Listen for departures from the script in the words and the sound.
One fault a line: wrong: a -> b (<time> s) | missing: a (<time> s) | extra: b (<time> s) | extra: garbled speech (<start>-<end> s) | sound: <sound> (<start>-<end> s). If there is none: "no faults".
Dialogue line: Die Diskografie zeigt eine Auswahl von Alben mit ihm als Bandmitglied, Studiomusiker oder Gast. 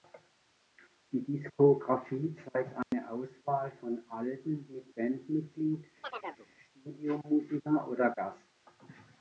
sound: dropout (2.8-2.9 s)
missing: ihm als (5.0 s)
sound: chirp (6.0-6.5 s)